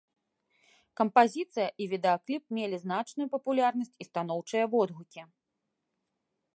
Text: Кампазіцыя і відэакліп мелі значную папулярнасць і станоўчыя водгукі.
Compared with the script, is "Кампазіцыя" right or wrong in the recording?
right